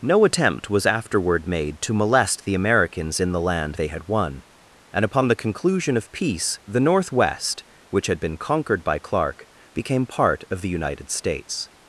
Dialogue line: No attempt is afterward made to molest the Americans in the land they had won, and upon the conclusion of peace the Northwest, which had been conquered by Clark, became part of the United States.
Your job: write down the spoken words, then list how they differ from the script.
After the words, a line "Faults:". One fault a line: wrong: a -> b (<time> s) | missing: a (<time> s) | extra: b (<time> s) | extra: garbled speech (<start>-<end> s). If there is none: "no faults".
No attempt was afterward made to molest the Americans in the land they had won, and upon the conclusion of peace the Northwest, which had been conquered by Clark, became part of the United States.
Faults:
wrong: is -> was (0.7 s)